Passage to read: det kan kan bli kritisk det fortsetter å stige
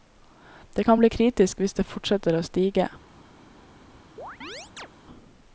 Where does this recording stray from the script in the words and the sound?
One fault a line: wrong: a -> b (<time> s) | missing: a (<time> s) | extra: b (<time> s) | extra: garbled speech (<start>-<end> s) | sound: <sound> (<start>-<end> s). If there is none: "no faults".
missing: kan (1.0 s)
extra: hvis (1.6 s)
sound: chirp (4.2-4.9 s)